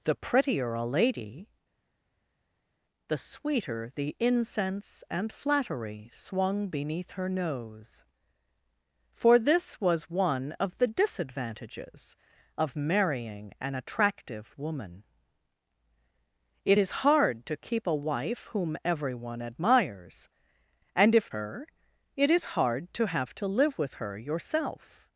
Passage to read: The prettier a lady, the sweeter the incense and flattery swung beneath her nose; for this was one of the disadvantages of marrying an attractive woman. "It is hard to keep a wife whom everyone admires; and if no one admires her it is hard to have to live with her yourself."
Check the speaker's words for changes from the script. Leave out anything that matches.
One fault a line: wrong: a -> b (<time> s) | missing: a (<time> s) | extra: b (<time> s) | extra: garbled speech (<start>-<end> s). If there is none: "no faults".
missing: no one admires (21.3 s)